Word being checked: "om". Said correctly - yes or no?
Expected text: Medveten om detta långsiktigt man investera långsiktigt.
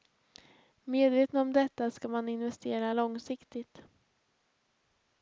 yes